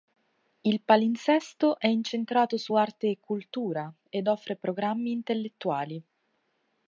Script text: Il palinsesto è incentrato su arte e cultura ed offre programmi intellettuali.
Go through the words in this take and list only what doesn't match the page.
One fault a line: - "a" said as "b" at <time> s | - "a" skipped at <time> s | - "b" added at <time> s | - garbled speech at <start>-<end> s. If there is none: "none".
none